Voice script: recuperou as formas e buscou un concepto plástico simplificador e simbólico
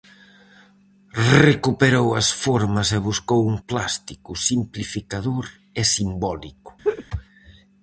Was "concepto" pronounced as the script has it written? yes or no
no